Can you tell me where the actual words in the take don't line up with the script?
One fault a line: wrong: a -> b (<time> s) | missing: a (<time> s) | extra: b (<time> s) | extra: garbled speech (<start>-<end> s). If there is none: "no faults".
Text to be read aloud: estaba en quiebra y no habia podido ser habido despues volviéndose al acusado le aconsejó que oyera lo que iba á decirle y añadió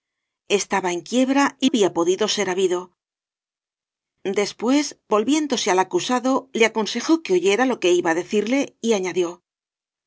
missing: no (1.7 s)